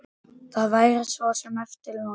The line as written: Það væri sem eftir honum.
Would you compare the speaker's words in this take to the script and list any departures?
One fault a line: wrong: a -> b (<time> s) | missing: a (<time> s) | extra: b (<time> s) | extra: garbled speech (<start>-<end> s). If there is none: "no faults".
extra: svo (1.1 s)